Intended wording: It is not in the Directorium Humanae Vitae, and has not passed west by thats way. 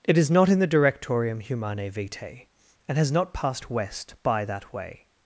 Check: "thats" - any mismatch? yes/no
yes